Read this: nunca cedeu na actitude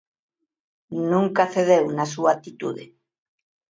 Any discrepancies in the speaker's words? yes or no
yes